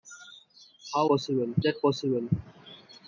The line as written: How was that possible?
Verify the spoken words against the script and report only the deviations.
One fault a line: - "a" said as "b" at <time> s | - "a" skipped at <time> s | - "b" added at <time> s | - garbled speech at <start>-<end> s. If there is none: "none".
- "was" said as "possible" at 1.1 s